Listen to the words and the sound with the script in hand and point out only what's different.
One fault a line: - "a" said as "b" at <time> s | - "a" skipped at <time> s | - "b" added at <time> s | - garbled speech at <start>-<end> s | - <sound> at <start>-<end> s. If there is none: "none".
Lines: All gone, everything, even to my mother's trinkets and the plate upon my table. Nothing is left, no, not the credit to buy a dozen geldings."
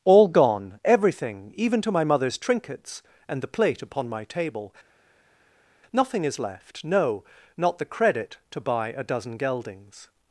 none